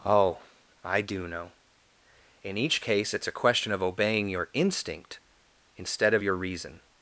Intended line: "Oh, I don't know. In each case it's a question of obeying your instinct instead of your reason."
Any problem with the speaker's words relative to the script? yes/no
yes